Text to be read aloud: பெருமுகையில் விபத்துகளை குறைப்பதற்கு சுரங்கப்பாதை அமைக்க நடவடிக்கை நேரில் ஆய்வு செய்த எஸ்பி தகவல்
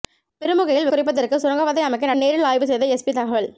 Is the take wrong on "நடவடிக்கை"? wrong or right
wrong